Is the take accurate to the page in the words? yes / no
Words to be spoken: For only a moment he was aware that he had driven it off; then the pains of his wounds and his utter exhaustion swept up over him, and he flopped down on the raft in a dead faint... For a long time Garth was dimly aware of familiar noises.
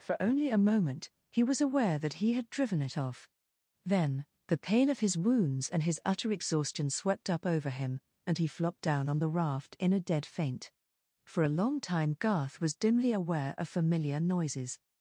no